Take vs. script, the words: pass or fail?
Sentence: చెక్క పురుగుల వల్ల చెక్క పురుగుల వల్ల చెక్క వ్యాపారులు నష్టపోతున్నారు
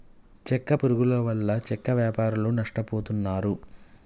fail